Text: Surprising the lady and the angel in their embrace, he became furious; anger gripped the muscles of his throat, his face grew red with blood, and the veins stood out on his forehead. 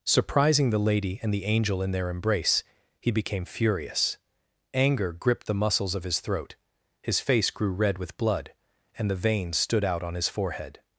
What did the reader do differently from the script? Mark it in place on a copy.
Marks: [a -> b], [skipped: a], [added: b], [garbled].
Surprising the lady and the angel in their embrace, he became furious; anger gripped the muscles of his throat, his face grew red with blood, and the veins stood out on his forehead.